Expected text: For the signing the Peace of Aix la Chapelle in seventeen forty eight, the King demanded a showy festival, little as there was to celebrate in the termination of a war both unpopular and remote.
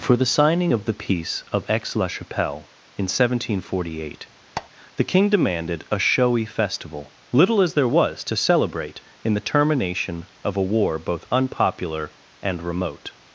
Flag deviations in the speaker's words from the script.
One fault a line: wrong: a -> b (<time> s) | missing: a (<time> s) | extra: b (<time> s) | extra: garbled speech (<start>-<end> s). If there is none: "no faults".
extra: of (0.7 s)